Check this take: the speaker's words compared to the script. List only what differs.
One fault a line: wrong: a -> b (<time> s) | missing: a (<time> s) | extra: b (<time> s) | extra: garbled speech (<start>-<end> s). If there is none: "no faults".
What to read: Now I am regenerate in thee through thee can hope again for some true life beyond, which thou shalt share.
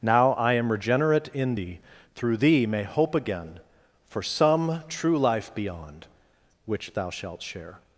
wrong: can -> may (2.7 s)